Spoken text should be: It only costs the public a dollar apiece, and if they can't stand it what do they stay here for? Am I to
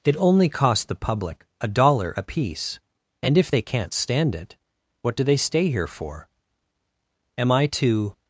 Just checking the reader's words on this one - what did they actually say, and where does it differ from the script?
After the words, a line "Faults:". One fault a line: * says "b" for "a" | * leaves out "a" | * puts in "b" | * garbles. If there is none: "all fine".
It only costs the public a dollar apiece, and if they can't stand it what do they stay here for? Am I to
Faults:
all fine